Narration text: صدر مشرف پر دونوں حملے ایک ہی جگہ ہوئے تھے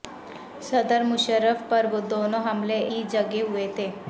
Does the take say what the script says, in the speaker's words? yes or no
no